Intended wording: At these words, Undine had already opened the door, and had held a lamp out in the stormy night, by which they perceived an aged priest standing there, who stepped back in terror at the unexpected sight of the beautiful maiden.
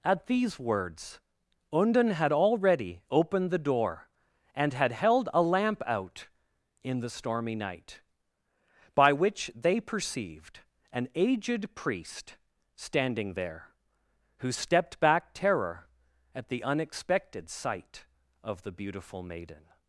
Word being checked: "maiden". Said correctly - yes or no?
yes